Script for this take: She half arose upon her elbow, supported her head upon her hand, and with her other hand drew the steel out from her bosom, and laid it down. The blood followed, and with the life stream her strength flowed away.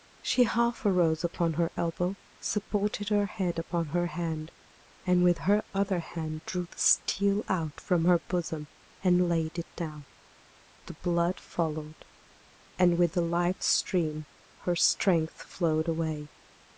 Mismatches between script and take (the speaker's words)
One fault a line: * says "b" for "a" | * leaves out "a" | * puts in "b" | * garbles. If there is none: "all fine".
all fine